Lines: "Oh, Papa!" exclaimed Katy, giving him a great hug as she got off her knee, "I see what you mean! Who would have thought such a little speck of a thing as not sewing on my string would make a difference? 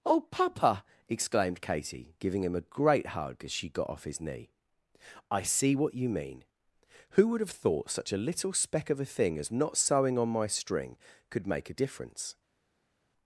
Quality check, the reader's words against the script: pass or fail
fail